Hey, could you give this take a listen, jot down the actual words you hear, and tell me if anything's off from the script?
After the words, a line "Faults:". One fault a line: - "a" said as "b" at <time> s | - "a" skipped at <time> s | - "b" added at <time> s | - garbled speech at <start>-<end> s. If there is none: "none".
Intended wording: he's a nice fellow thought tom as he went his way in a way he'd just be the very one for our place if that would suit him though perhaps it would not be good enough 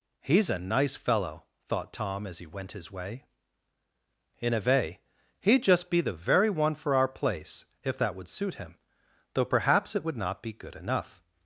he's a nice fellow thought tom as he went his way in a way he'd just be the very one for our place if that would suit him though perhaps it would not be good enough
Faults:
none